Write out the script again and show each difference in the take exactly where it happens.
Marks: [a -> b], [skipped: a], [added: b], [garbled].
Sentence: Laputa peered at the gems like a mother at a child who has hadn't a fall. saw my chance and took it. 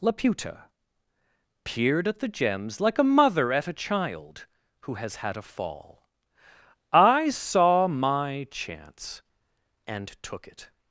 Laputa peered at the gems like a mother at a child who has [hadn't -> had] a fall. [added: I] saw my chance and took it.